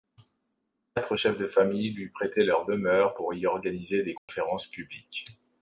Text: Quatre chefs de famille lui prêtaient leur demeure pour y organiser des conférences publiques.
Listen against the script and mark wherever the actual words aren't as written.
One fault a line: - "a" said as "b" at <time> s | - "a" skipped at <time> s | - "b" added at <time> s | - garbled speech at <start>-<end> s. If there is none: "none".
none